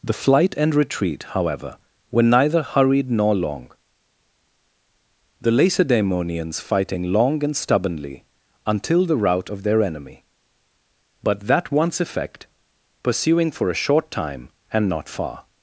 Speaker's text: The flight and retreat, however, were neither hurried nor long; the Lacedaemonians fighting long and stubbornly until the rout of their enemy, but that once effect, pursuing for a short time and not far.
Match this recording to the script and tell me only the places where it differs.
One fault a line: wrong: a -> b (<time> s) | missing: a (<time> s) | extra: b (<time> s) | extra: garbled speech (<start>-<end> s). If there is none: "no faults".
no faults